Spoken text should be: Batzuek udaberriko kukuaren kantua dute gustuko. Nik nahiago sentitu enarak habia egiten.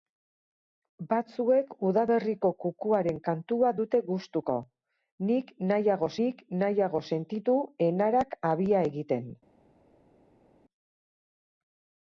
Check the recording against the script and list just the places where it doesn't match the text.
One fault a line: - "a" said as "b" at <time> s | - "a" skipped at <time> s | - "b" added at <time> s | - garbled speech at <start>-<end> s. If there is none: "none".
- "nik nahiago" added at 6.2 s